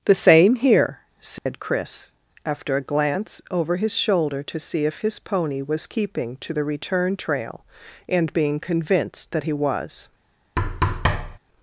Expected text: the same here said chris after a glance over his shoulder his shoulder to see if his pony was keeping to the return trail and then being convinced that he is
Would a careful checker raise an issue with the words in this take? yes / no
yes